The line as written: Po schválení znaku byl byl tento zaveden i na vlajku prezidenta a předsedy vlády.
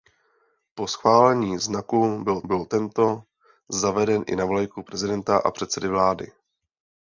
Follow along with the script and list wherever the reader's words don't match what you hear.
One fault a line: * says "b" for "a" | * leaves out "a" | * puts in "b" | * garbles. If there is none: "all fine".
all fine